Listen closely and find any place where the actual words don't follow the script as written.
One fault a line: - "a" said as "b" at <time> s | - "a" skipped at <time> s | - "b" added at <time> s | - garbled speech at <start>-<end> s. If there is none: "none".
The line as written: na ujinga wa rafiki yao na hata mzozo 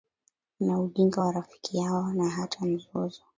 none